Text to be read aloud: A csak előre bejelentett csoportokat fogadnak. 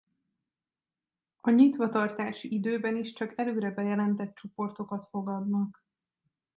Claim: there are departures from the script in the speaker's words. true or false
true